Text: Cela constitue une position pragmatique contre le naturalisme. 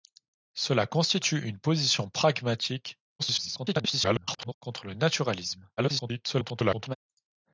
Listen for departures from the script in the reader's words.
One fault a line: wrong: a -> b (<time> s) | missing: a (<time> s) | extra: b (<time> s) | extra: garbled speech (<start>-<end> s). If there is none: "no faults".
extra: garbled speech (3.2-4.5 s)
extra: garbled speech (5.8-6.9 s)